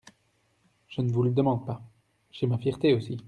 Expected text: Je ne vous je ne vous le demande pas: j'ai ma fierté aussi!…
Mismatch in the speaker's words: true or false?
true